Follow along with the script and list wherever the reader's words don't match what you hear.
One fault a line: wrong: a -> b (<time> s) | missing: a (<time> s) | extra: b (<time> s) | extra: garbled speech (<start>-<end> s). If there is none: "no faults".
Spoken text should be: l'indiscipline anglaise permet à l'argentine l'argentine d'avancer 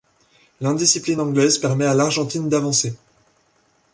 missing: l'argentine (2.5 s)